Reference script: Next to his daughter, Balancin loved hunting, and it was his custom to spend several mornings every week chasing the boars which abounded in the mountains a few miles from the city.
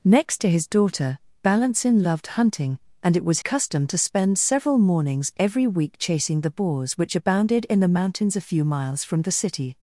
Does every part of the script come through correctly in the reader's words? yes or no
no